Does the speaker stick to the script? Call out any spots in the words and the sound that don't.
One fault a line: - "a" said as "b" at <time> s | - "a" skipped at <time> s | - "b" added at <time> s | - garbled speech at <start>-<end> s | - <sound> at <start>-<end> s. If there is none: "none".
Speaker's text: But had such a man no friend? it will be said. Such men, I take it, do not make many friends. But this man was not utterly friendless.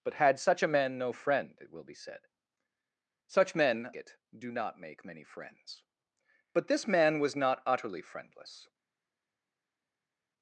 - "I take" skipped at 3.9 s